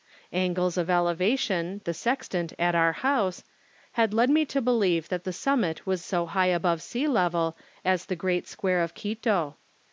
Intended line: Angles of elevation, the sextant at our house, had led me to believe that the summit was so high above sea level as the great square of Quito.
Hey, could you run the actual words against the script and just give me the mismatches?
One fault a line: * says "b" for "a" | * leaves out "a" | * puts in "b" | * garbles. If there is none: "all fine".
all fine